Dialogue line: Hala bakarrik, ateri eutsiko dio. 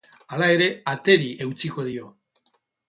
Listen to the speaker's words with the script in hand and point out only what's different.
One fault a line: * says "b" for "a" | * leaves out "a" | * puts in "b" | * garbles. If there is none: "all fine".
* says "ere" for "bakarrik"